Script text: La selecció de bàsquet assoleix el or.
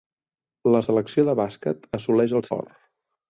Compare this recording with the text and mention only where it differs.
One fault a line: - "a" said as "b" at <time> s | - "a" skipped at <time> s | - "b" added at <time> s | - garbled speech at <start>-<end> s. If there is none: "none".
none